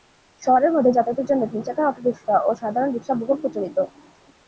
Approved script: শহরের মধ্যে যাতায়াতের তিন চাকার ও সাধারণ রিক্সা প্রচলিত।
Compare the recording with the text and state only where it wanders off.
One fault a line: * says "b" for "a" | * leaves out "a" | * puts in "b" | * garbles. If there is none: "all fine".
* puts in "জন্য"
* puts in "অটোরিক্সা"
* puts in "বহুল"